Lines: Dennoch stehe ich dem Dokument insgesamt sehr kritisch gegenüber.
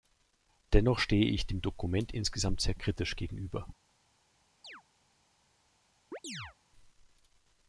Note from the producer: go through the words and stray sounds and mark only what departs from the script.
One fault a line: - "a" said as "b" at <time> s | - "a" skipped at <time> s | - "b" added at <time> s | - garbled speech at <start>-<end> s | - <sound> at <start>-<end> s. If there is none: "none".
- chirp at 4.6-4.8 s
- chirp at 6.1-6.6 s